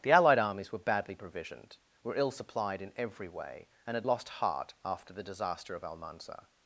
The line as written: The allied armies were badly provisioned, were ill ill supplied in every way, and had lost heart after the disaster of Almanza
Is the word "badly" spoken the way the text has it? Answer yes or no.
yes